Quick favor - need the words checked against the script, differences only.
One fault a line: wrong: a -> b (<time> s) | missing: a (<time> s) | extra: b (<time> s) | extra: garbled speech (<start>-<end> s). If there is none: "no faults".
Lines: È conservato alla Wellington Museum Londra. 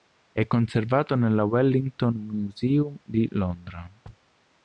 wrong: alla -> nella (1.2 s)
extra: di (3.0 s)